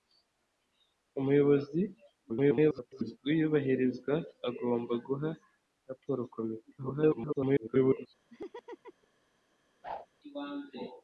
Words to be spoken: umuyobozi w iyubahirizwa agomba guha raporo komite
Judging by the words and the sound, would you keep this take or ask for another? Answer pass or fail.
fail